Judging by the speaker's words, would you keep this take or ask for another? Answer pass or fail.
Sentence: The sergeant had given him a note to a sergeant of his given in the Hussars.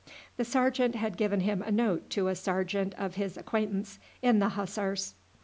fail